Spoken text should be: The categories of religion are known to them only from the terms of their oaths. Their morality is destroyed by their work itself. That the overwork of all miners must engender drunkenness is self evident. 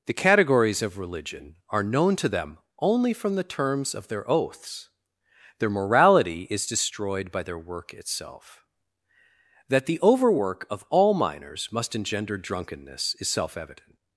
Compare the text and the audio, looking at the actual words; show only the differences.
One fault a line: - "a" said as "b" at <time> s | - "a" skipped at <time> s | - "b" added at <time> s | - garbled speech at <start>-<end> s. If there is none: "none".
none